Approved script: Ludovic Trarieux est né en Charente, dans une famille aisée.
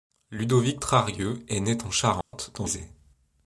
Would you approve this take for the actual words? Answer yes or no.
no